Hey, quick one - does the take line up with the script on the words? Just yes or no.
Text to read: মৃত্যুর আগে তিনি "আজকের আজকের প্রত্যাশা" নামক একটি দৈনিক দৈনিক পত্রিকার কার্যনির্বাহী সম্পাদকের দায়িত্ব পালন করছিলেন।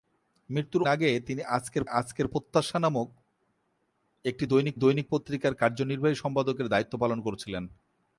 yes